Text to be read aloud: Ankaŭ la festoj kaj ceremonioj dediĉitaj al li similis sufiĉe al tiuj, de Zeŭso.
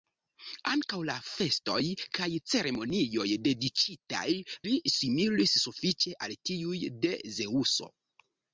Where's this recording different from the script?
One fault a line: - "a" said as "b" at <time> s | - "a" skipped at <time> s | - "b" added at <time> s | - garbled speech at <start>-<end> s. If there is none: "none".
- "al" skipped at 4.2 s